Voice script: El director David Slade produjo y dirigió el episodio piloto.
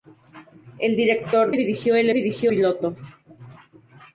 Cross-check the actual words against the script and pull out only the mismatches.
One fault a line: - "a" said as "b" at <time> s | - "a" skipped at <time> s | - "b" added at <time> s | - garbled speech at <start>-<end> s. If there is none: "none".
- "David Slade produjo" skipped at 1.6 s
- "episodio" said as "dirigió" at 2.1 s